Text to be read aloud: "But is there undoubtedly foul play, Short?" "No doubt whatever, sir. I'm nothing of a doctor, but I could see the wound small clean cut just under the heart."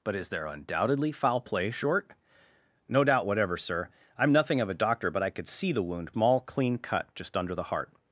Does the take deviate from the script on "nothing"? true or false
false